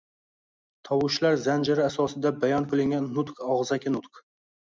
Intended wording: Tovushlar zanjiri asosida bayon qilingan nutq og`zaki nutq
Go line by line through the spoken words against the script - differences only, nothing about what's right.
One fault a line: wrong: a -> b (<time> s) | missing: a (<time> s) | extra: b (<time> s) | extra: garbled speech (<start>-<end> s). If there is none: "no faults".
no faults